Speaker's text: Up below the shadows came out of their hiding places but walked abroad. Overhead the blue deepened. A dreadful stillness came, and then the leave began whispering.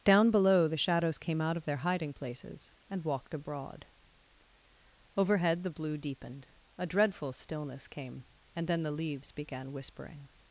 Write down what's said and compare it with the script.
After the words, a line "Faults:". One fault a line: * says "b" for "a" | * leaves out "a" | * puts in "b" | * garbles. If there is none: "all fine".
Down below the shadows came out of their hiding places and walked abroad. Overhead the blue deepened. A dreadful stillness came, and then the leaves began whispering.
Faults:
* says "Down" for "Up"
* says "and" for "but"
* says "leaves" for "leave"